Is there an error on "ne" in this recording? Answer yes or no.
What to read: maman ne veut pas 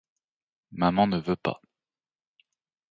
no